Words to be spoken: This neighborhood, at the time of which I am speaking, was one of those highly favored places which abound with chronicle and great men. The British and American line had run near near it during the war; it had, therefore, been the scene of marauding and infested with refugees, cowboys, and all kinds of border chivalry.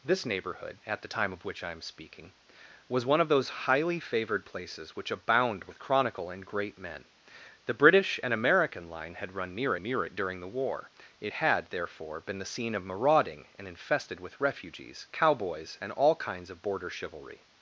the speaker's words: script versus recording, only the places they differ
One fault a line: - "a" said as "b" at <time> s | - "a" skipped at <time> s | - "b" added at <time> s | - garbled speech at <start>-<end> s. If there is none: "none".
none